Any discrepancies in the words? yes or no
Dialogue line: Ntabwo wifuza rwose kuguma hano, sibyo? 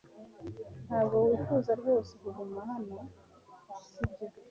no